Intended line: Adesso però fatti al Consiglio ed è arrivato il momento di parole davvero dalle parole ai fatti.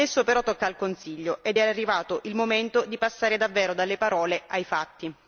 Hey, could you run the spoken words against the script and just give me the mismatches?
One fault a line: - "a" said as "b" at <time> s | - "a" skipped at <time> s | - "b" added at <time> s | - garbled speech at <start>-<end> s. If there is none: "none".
- "fatti" said as "tocca" at 0.4 s
- "parole" said as "passare" at 3.0 s